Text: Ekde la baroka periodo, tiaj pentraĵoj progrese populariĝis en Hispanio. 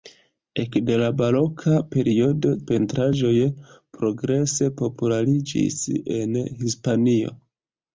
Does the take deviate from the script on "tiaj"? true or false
true